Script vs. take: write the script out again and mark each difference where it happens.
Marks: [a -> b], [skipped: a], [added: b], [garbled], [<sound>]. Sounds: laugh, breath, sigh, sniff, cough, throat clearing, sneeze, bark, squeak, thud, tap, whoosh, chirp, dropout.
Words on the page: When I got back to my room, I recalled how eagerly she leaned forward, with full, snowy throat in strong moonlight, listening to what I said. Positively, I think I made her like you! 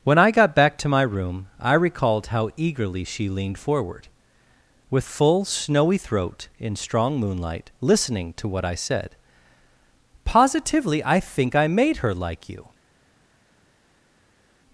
When I got back to my room, I recalled how eagerly she leaned forward, with full, snowy throat in strong moonlight, listening to what I said. Positively, I think I made her like you!